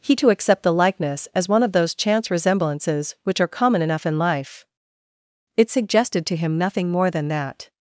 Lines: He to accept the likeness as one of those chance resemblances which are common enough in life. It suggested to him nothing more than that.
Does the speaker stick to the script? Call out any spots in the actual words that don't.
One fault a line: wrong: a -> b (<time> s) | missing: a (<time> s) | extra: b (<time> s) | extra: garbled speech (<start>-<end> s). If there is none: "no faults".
no faults